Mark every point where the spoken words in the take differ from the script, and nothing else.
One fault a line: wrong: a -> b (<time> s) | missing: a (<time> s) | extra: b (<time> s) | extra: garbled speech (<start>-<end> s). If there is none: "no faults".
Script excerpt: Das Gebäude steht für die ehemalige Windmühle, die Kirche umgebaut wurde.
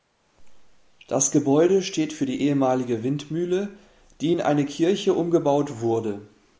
extra: in eine (4.3 s)